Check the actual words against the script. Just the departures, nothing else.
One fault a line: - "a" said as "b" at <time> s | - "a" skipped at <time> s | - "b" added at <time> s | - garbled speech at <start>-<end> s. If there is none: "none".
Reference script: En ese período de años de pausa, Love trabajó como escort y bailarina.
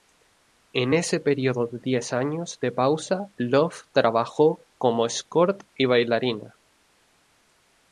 - "diez" added at 1.8 s